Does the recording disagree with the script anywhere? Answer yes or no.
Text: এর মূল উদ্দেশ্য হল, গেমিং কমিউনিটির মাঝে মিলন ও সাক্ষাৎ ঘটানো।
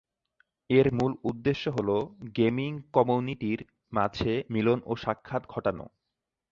no